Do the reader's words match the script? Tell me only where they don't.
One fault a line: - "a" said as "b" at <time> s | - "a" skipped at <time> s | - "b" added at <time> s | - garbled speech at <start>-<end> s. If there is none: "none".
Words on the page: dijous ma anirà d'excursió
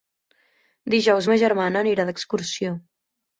- "germana" added at 1.4 s